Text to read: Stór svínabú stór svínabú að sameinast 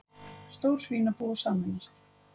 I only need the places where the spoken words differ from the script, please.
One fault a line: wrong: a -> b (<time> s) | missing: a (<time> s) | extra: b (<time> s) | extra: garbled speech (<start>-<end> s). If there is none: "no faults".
missing: stór svínabú (1.3 s)